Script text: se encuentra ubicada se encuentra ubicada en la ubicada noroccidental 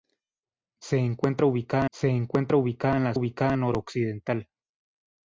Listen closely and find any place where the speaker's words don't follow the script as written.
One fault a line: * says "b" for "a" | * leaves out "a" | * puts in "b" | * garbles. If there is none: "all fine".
all fine